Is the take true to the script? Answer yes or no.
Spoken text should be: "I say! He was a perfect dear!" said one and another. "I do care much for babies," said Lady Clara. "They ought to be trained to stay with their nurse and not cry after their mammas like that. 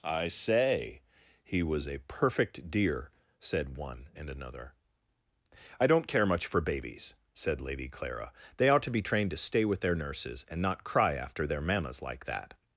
no